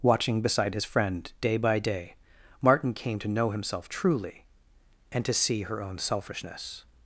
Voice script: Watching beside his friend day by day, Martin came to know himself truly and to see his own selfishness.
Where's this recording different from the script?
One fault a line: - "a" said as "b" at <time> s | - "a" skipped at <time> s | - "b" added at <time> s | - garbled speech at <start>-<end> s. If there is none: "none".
- "his" said as "her" at 5.6 s